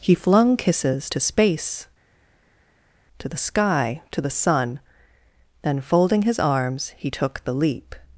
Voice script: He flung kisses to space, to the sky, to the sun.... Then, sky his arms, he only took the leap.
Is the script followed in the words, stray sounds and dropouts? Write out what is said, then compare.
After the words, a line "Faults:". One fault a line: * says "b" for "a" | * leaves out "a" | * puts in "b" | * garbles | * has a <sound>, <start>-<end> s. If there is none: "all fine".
He flung kisses to space, to the sky, to the sun.... Then, folding his arms, he took the leap.
Faults:
* says "folding" for "sky"
* leaves out "only"